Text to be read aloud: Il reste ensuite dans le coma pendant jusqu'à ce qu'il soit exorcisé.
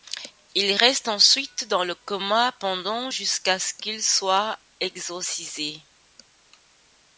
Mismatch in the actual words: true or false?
false